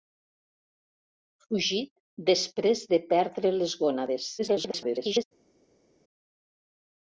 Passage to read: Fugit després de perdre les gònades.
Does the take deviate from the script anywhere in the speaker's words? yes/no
yes